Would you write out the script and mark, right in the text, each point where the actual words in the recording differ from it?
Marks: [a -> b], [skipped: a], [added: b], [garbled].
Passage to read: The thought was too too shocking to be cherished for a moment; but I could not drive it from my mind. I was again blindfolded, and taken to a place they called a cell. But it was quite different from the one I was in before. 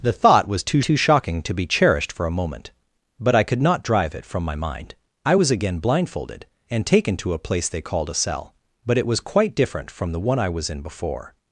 The thought was too too shocking to be cherished for a moment; but I could not drive it from my mind. I was again blindfolded, and taken to a place they called a cell. But it was quite different from the one I was in before.